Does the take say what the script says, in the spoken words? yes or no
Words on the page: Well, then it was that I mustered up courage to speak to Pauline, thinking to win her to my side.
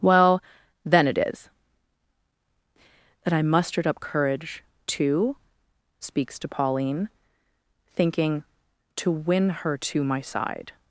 no